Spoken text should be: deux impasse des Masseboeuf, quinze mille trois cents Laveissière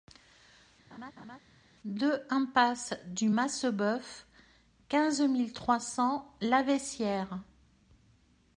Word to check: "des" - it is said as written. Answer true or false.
false